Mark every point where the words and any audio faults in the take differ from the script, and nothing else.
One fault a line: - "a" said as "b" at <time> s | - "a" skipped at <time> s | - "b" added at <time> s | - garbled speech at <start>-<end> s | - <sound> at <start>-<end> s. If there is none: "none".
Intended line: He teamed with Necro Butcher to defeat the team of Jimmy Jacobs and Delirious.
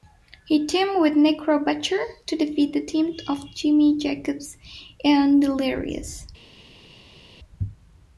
none